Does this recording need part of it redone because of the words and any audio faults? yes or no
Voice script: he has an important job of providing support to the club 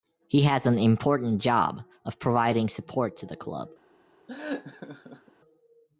yes